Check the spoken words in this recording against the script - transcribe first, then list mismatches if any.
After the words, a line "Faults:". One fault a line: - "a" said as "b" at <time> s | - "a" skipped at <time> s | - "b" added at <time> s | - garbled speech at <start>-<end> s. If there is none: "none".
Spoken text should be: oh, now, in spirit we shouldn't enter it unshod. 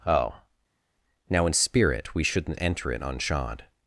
oh, now, in spirit we shouldn't enter it unshod.
Faults:
none